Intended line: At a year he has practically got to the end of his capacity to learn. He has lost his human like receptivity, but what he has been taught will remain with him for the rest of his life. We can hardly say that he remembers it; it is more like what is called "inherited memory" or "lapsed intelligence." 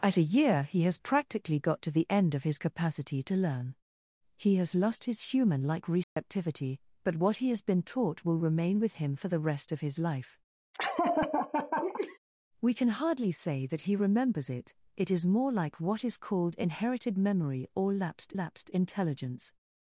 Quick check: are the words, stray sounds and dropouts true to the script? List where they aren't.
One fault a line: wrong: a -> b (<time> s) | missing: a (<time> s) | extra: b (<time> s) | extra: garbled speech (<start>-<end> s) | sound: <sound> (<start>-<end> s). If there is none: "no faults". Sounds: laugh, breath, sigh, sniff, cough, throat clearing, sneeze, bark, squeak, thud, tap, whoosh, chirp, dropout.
sound: dropout (6.0-6.2 s)
sound: laugh (10.7-12.2 s)
extra: lapsed (18.3 s)